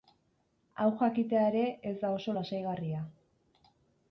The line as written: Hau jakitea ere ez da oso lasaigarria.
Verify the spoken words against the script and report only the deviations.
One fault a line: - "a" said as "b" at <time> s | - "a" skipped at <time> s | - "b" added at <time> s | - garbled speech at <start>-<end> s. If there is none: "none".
none